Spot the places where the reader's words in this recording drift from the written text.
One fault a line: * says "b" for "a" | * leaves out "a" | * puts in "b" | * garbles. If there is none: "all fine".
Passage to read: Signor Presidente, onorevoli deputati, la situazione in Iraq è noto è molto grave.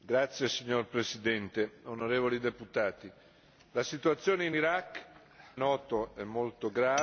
all fine